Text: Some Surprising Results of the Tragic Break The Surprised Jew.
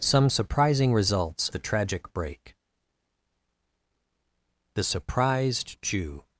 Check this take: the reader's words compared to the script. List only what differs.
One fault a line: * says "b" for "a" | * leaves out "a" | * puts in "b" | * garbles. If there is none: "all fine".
* leaves out "of"